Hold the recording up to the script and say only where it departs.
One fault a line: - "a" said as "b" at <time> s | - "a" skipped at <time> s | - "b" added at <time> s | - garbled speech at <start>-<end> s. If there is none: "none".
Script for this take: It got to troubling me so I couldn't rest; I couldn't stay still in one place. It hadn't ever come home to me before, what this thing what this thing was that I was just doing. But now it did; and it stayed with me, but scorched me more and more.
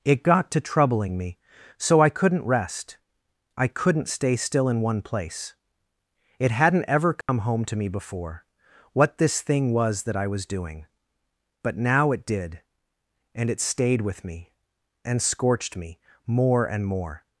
- "what this thing" skipped at 9.7 s
- "just" skipped at 10.4 s
- "but" said as "and" at 15.1 s